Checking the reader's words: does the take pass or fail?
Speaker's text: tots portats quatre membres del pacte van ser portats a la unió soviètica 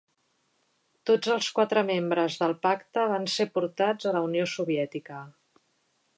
fail